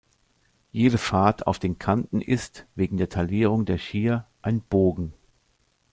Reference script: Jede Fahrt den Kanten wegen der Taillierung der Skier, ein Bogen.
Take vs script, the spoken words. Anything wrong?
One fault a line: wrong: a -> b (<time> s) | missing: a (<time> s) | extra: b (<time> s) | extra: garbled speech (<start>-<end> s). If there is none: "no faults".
extra: auf (1.4 s)
extra: ist (2.2 s)